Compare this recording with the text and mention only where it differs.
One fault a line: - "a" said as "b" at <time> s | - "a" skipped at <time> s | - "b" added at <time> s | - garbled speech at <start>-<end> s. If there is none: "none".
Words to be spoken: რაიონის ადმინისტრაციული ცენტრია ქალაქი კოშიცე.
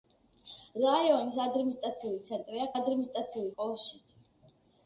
- "ქალაქი" said as "ადმინისტრაციული" at 2.8 s